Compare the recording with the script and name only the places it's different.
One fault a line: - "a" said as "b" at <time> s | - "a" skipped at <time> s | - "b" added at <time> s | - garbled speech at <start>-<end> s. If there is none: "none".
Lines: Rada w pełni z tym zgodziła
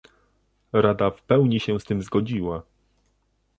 - "się" added at 1.6 s